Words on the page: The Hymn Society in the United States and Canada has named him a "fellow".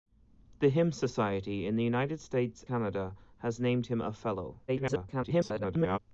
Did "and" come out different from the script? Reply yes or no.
yes